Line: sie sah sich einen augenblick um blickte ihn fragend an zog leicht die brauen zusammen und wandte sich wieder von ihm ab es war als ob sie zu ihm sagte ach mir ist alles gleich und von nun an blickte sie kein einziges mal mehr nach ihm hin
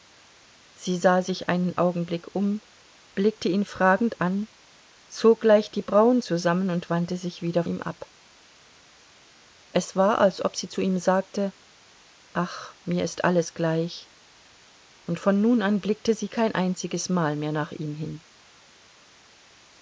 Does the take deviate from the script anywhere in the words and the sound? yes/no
yes